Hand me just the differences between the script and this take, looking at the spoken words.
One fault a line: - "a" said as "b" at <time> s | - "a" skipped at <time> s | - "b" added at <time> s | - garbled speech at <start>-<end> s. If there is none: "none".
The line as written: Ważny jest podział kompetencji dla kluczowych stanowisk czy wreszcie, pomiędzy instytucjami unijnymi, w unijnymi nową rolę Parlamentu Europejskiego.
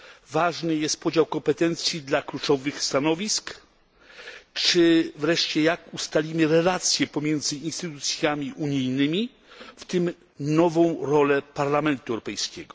- "jak ustalimy relacje" added at 5.6 s
- "unijnymi" said as "tym" at 9.8 s